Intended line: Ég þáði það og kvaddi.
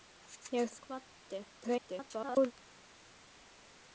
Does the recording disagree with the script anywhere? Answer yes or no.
yes